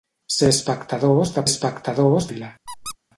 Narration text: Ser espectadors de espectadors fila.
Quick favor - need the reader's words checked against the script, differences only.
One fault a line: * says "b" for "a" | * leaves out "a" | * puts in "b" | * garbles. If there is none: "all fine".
all fine